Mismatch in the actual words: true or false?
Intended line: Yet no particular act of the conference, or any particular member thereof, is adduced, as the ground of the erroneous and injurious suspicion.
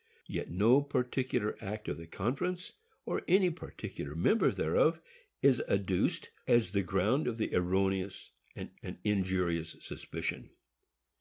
true